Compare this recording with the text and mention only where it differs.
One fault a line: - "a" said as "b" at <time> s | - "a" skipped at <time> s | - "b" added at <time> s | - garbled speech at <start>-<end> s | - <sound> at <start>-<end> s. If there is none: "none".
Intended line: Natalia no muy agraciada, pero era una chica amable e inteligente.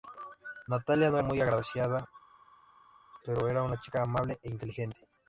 none